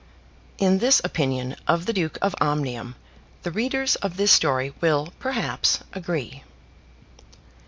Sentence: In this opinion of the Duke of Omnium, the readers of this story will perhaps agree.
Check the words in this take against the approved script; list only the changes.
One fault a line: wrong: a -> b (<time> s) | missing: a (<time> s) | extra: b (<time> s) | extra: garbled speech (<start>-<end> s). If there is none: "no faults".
no faults